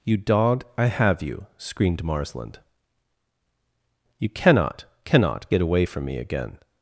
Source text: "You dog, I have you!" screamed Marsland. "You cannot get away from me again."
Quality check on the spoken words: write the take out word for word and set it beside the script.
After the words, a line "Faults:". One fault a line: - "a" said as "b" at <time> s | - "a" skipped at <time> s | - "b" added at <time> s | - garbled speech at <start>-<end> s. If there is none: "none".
"You dog, I have you!" screamed Marsland. "You cannot cannot get away from me again."
Faults:
- "cannot" added at 5.0 s